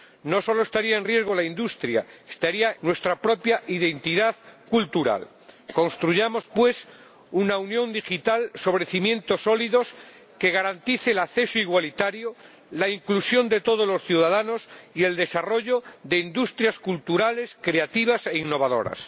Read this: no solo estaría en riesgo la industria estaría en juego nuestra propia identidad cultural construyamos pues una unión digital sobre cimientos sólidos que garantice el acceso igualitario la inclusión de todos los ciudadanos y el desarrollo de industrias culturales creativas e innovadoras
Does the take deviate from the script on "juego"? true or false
true